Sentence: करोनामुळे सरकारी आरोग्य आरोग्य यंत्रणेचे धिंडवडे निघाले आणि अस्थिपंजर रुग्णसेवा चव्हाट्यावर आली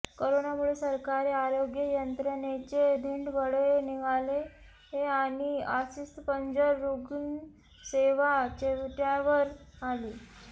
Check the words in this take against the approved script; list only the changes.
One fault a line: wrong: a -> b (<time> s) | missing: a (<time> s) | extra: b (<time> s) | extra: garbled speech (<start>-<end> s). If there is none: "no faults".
missing: आरोग्य (1.8 s)